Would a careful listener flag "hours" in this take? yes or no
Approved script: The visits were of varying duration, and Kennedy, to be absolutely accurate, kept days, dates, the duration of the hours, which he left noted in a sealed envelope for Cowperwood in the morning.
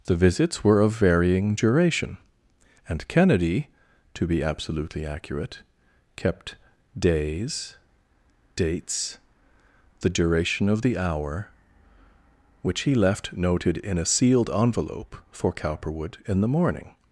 yes